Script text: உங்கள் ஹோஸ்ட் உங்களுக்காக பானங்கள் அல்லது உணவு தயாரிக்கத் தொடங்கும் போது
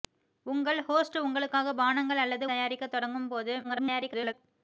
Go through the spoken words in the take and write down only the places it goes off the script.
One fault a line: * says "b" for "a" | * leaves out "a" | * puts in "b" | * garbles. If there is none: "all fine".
* leaves out "உணவு"
* garbles